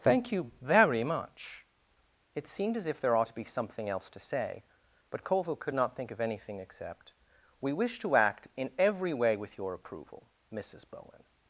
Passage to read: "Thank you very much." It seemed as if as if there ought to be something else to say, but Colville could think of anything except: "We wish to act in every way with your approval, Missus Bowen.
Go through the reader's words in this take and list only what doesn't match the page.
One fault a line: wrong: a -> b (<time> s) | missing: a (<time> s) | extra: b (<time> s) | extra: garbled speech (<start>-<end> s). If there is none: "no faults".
missing: as if (3.0 s)
extra: not (5.7 s)